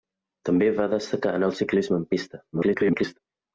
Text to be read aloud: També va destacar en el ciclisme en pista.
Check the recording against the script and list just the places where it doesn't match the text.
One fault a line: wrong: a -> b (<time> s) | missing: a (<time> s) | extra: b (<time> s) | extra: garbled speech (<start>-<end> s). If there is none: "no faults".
extra: garbled speech (2.5-3.2 s)